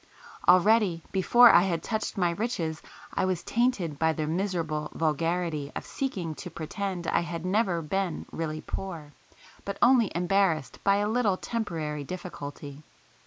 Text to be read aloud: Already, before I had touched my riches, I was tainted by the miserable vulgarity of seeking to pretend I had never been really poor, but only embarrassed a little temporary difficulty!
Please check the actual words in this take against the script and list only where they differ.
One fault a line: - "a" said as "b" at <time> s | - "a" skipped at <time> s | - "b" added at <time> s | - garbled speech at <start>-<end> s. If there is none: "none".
- "by" added at 10.8 s